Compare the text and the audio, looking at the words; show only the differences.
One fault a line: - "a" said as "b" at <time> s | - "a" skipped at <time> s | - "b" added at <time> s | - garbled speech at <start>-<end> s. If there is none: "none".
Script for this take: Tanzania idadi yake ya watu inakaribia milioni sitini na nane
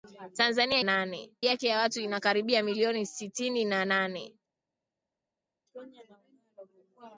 - "idadi" said as "nane" at 0.8 s